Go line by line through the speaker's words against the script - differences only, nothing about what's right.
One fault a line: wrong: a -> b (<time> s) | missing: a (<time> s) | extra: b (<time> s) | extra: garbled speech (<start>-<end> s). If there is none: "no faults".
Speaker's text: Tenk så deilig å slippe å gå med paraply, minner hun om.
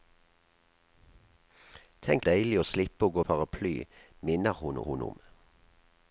missing: så (2.2 s)
missing: med (3.2 s)
extra: hun (4.8 s)